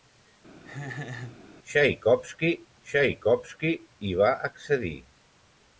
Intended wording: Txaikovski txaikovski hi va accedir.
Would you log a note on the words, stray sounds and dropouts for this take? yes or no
yes